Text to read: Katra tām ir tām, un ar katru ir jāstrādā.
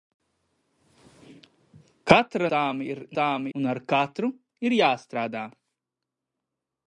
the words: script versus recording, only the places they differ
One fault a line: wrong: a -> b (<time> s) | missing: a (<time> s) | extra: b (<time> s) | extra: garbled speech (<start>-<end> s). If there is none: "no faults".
no faults